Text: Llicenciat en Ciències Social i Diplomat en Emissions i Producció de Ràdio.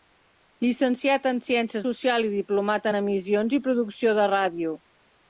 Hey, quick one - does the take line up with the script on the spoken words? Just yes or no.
yes